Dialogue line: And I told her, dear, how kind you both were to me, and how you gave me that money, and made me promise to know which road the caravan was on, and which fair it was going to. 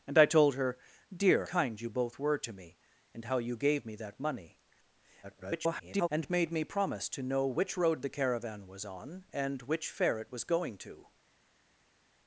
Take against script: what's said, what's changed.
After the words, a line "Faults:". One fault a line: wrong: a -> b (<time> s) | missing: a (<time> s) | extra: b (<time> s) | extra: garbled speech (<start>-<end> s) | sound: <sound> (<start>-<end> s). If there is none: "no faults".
And I told her, dear, kind you both were to me, and how you gave me that money, [garbled] and made me promise to know which road the caravan was on, and which fair it was going to.
Faults:
missing: how (1.4 s)
extra: garbled speech (5.2-6.1 s)